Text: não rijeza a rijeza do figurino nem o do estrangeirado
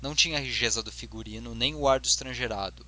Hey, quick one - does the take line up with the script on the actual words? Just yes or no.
no